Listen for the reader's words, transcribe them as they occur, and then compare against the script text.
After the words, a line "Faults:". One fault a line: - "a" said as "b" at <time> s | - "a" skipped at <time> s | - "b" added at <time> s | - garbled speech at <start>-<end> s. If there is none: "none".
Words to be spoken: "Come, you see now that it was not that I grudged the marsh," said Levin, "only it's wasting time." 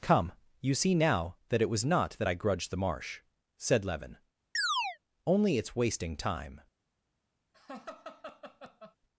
"Come, you see now that it was not that I grudged the marsh," said Levin, "only it's wasting time."
Faults:
none